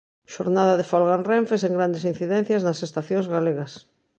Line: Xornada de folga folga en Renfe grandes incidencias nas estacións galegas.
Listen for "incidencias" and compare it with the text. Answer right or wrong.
right